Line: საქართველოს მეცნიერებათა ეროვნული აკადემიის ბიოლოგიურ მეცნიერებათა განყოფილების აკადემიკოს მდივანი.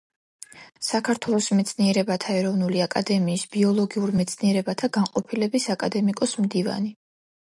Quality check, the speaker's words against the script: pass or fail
pass